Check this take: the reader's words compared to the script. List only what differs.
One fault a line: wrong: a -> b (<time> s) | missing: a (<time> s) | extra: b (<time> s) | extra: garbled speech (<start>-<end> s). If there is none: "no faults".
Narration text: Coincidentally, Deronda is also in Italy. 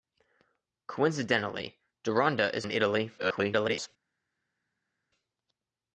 missing: also (2.6 s)
extra: garbled speech (3.2-3.9 s)